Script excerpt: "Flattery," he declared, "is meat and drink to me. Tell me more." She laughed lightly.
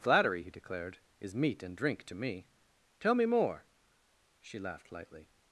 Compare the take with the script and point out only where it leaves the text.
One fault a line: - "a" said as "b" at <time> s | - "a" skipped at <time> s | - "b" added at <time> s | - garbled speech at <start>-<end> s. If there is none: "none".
none